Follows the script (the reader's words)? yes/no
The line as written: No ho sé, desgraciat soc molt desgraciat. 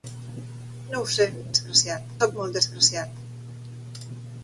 yes